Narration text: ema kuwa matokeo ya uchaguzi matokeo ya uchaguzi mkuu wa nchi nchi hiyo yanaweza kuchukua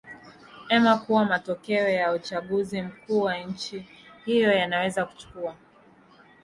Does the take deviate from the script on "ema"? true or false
false